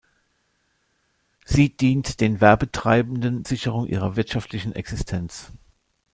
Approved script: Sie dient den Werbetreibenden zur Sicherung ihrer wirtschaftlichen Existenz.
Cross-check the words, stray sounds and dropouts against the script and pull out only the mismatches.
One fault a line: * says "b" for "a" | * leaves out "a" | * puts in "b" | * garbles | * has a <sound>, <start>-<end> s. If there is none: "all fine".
* leaves out "zur"